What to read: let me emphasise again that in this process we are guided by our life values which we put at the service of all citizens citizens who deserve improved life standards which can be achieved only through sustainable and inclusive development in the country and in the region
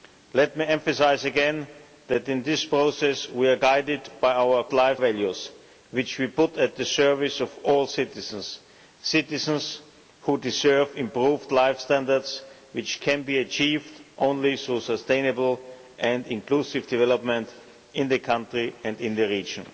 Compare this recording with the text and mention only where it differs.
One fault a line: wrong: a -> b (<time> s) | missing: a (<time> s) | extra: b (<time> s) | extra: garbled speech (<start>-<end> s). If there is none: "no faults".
no faults